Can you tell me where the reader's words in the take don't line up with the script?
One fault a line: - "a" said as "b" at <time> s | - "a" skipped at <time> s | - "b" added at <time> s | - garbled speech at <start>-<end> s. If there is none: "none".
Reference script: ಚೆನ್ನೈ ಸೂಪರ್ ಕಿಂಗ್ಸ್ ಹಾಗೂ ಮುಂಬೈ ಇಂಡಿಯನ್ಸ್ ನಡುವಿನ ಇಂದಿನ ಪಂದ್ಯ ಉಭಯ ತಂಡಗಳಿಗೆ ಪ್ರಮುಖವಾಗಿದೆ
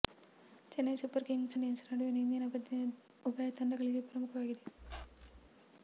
- "ಹಾಗೂ ಮುಂಬೈ" skipped at 1.6 s